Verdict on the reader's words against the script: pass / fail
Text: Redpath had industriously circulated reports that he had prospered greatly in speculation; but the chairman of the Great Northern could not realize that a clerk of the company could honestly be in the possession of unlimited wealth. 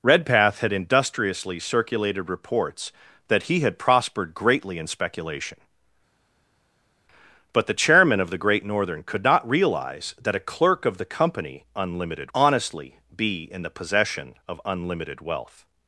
fail